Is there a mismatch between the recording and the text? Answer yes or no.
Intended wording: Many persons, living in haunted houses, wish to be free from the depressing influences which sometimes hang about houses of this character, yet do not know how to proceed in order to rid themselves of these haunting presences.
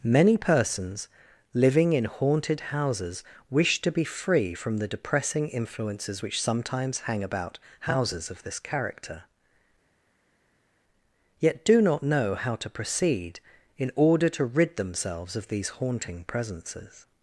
no